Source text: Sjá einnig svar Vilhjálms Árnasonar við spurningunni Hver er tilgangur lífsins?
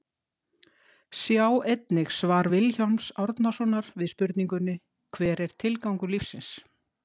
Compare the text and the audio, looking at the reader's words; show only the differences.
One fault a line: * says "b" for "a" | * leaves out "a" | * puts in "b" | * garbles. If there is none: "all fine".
all fine